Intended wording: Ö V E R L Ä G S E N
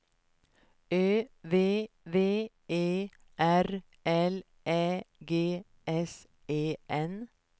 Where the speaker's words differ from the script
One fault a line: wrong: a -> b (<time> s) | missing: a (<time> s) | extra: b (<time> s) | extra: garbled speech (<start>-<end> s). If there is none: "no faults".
extra: V (2.1 s)